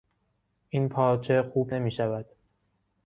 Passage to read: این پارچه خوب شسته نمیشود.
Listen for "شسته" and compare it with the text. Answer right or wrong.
wrong